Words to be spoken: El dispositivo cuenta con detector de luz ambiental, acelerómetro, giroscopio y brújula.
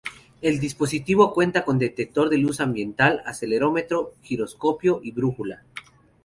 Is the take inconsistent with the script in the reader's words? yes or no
no